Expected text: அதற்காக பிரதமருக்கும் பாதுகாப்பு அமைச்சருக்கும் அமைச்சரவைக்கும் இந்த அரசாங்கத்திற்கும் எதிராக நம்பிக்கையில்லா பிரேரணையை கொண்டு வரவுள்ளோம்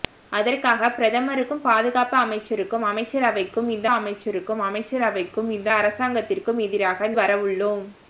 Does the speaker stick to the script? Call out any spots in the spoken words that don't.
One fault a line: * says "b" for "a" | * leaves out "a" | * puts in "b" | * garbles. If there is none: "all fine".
* says "அமைச்சருக்கும் அமைச்சரவைக்கும் இந்த அரசாங்கத்திற்கும் எதிராக" for "அரசாங்கத்திற்கும் எதிராக நம்பிக்கையில்லா பிரேரணையை கொண்டு"